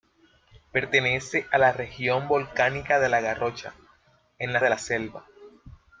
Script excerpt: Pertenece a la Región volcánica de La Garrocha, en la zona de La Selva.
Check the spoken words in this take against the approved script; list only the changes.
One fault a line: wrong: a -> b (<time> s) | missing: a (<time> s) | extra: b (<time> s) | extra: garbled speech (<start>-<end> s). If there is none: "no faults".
missing: zona (4.6 s)